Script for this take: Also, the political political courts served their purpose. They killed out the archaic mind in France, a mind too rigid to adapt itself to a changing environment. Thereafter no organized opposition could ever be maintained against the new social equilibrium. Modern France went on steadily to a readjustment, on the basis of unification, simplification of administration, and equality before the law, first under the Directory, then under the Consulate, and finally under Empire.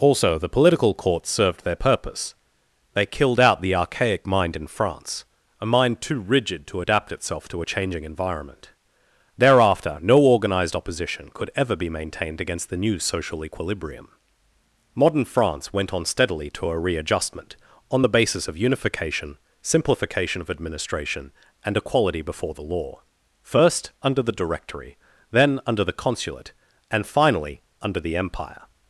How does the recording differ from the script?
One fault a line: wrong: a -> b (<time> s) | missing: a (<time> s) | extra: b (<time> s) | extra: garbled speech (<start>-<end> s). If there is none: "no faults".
missing: political (0.9 s)
extra: the (28.0 s)